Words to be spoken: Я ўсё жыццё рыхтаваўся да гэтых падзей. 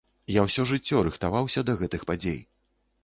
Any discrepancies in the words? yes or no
no